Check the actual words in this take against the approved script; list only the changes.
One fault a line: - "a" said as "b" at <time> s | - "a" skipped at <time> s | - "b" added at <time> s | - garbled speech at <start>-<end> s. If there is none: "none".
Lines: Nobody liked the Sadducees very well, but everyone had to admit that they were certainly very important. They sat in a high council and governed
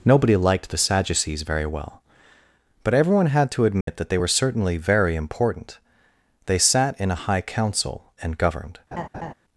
none